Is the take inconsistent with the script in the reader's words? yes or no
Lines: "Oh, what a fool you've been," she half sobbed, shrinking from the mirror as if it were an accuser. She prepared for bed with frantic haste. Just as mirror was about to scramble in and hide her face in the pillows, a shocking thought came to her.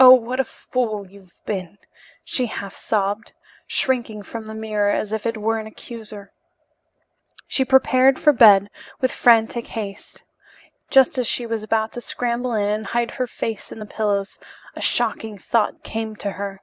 yes